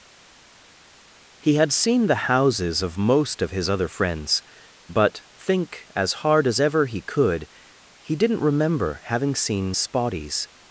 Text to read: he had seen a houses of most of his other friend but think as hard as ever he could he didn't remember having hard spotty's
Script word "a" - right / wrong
wrong